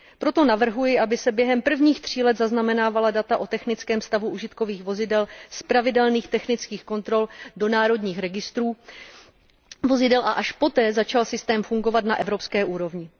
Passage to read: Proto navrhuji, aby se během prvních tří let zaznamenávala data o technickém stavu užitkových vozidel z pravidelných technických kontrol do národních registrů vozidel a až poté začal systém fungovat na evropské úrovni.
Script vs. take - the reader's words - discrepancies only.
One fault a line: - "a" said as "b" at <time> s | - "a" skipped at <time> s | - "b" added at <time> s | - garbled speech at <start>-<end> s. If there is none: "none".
none